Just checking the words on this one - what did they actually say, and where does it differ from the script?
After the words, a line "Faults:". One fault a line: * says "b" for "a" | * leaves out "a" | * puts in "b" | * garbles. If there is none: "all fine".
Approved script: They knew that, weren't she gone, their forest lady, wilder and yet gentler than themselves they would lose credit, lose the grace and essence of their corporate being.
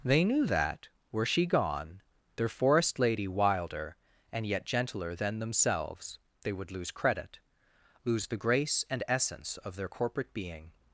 They knew that, were she gone, their forest lady, wilder and yet gentler than themselves they would lose credit, lose the grace and essence of their corporate being.
Faults:
* says "were" for "weren't"